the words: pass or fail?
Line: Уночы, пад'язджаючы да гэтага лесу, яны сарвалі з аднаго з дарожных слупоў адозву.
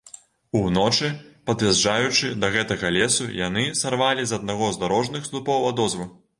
pass